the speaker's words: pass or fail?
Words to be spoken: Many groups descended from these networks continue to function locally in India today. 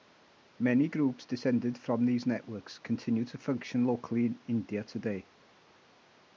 pass